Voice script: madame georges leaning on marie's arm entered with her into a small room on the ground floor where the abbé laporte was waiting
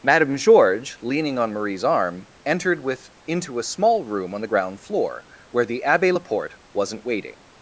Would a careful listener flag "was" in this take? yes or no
yes